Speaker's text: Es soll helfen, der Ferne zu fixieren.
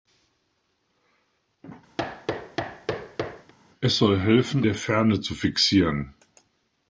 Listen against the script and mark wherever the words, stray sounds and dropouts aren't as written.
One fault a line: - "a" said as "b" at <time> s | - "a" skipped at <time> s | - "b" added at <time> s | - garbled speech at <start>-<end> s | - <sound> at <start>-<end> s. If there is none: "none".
- thud at 2.0-3.5 s